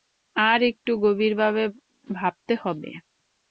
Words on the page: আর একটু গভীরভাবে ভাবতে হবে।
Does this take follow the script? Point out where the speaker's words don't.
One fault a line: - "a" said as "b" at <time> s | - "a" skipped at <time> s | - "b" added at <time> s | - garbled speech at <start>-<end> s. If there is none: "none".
none